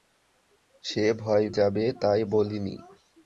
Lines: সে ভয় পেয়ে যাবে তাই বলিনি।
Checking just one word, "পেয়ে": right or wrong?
wrong